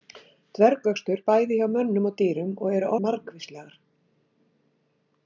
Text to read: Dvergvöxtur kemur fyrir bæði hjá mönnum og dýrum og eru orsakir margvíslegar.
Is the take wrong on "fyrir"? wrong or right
wrong